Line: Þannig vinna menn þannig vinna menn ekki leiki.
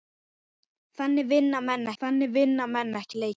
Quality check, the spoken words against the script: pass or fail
pass